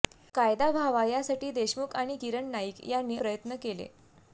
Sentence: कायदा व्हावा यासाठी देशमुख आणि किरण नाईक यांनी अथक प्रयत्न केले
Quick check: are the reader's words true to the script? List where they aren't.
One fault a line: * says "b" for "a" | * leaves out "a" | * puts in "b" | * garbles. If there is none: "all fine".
* leaves out "अथक"